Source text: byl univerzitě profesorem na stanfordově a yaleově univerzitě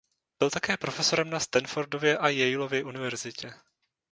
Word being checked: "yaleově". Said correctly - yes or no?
yes